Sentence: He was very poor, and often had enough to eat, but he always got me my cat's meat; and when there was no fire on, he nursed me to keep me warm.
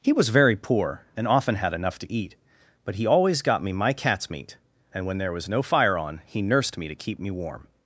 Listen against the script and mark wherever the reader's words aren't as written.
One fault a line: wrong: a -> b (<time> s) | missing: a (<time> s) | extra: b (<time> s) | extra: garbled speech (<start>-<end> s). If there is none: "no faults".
no faults